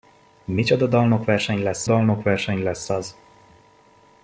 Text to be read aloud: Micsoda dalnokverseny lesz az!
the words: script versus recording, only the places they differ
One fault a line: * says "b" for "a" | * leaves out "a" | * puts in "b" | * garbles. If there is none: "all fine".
* puts in "dalnokverseny lesz"